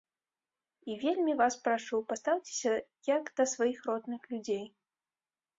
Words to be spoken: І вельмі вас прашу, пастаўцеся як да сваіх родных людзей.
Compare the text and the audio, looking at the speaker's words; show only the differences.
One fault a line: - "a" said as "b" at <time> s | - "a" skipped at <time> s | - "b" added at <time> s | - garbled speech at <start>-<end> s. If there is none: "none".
none